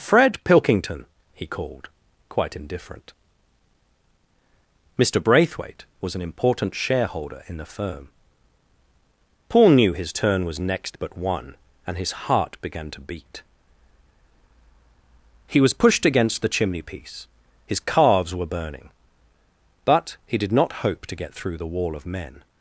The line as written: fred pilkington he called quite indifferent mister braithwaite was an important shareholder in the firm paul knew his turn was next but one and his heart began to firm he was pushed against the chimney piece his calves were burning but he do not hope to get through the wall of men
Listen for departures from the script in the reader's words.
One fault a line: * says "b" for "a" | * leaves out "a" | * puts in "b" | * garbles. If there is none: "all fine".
* says "beat" for "firm"
* says "did" for "do"